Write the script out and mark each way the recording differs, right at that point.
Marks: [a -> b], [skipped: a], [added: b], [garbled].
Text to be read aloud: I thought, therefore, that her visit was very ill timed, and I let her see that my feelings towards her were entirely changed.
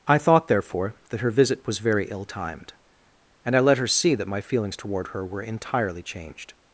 I thought, therefore, that her visit was very ill timed, and I let her see that my feelings [towards -> toward] her were entirely changed.